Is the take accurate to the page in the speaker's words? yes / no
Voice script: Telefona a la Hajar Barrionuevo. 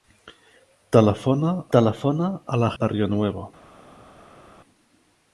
no